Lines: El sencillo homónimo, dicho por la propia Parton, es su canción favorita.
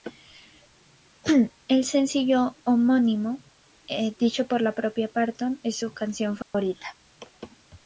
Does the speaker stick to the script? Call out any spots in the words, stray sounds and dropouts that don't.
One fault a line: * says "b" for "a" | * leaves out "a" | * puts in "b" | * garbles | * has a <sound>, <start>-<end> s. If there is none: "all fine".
* has a dropout, 6.4-6.5 s